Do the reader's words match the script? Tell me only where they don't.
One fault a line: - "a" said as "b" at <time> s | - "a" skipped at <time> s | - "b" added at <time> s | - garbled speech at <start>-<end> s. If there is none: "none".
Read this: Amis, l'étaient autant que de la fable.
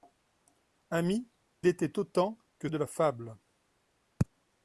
none